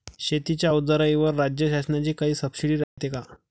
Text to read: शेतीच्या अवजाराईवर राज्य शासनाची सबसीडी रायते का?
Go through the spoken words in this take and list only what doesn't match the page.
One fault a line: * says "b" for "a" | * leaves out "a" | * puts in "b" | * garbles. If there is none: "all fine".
* puts in "काई"